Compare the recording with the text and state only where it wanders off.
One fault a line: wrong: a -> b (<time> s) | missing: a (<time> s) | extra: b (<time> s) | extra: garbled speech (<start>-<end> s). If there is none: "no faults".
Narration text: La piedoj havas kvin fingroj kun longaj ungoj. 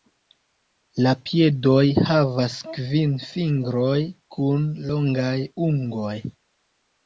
no faults